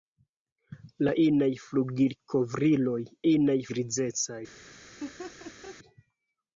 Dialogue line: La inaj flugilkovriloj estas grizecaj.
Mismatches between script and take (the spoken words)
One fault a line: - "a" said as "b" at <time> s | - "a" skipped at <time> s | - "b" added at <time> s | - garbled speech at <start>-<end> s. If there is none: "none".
- "estas" said as "inaj" at 3.3 s